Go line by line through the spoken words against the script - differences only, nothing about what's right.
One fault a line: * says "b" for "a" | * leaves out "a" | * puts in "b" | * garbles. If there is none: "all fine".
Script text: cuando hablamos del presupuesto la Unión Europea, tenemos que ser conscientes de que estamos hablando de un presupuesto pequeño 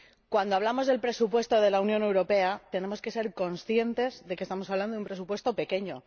* puts in "de"